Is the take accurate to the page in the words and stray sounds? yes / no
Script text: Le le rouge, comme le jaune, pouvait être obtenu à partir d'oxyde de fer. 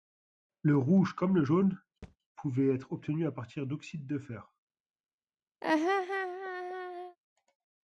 no